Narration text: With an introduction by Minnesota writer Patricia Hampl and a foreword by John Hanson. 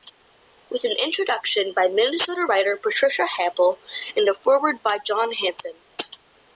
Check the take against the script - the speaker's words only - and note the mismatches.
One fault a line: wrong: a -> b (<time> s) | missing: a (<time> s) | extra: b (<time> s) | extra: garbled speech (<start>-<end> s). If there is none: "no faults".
no faults